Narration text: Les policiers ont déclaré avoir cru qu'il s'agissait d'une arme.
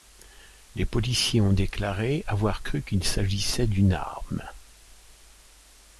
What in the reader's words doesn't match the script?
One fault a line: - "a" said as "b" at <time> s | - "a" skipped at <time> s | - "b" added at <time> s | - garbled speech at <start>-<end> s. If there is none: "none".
none